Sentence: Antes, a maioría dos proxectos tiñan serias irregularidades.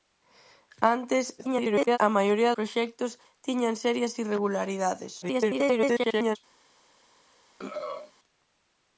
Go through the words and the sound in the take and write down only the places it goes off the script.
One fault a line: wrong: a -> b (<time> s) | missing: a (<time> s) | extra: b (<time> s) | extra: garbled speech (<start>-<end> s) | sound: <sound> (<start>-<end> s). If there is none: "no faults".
extra: garbled speech (1.4-2.0 s)
missing: dos (2.6 s)
extra: garbled speech (5.2-6.4 s)
sound: throat clearing (7.6-8.1 s)